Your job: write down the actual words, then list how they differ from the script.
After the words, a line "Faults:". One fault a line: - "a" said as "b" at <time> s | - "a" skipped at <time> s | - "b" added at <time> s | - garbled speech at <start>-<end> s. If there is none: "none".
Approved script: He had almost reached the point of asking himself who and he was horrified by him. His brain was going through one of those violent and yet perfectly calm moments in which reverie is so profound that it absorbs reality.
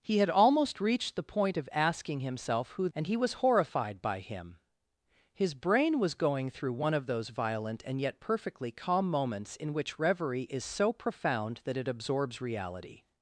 He had almost reached the point of asking himself who and he was horrified by him. His brain was going through one of those violent and yet perfectly calm moments in which reverie is so profound that it absorbs reality.
Faults:
none